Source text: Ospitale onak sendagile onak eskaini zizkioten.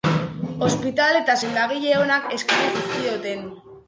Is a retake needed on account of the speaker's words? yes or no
yes